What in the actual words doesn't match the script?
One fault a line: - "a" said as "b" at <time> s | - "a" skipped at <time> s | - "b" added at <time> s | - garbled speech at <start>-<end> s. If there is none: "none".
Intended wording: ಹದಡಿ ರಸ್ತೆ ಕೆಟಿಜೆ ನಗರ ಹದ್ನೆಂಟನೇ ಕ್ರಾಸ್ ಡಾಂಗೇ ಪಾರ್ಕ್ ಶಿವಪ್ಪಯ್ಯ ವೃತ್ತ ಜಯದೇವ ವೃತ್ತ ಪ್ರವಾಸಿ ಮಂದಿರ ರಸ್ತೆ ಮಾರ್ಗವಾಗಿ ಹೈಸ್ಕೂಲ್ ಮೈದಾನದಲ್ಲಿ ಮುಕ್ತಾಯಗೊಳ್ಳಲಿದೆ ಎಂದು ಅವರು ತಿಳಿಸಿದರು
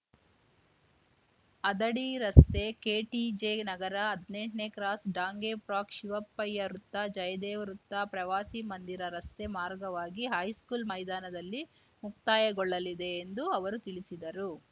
none